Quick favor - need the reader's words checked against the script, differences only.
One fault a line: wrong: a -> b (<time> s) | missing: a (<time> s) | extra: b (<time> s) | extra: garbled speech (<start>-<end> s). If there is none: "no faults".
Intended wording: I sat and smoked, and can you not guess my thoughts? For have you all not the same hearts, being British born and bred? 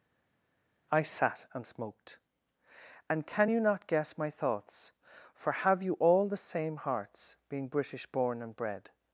missing: not (6.3 s)